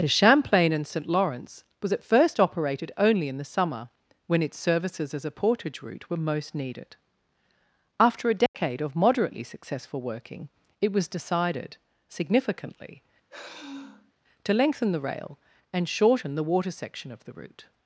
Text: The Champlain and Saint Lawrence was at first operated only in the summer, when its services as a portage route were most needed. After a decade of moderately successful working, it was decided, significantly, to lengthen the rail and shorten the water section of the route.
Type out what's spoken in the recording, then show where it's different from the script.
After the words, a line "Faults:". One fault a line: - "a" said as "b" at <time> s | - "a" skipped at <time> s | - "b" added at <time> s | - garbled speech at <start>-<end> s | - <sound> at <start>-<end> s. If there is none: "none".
The Champlain and Saint Lawrence was at first operated only in the summer, when its services as a portage route were most needed. After a decade of moderately successful working, it was decided, significantly, to lengthen the rail and shorten the water section of the route.
Faults:
- dropout at 8.5-8.5 s
- sigh at 13.3-14.1 s